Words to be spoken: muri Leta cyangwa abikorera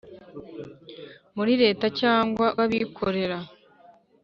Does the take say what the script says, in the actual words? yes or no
yes